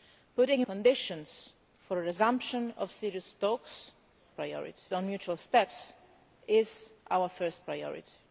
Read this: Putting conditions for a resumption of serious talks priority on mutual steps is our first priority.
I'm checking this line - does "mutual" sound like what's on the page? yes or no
yes